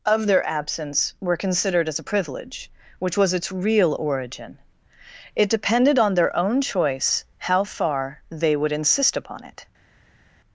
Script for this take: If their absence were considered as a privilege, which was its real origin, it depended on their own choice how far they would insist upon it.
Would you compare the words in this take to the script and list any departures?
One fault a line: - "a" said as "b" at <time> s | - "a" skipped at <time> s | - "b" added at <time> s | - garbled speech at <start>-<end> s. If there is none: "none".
- "If" said as "Of" at 0.0 s